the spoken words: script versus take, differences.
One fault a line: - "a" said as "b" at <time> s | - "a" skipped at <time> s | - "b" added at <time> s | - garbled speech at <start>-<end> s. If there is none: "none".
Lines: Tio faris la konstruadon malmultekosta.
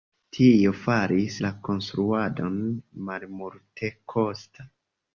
none